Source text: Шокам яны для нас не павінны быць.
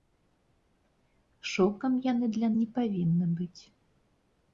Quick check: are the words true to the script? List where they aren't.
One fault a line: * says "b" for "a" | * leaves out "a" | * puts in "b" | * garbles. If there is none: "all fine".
* leaves out "нас"